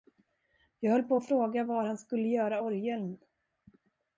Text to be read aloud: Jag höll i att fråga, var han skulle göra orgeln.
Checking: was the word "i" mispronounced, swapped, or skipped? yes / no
yes